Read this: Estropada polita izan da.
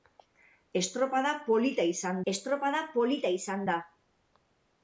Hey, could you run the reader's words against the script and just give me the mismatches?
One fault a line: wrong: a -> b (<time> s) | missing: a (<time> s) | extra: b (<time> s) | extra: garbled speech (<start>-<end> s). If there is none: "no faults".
extra: estropada polita izan (2.3 s)